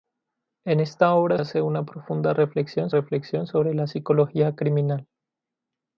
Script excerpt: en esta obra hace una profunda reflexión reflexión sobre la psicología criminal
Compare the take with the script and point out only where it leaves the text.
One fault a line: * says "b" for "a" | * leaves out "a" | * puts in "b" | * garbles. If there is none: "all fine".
all fine